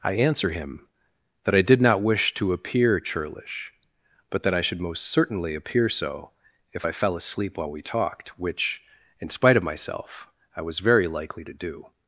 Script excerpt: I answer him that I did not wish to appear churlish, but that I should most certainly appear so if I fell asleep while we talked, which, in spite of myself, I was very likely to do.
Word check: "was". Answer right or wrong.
right